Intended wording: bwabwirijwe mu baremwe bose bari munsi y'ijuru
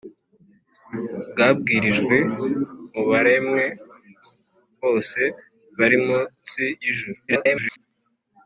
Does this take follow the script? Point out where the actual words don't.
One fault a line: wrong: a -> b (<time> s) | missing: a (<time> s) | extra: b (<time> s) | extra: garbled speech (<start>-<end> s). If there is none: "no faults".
extra: garbled speech (7.3-7.8 s)